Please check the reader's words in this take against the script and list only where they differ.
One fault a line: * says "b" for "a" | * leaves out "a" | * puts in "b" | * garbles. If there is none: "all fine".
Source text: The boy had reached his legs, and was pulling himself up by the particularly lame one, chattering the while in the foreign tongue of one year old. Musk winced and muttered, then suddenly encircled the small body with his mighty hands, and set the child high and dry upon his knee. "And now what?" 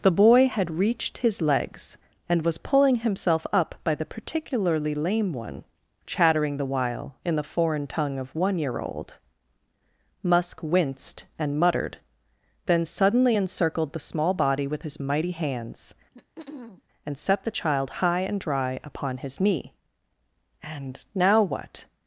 all fine